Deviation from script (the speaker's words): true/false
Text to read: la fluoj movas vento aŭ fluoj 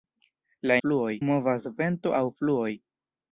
false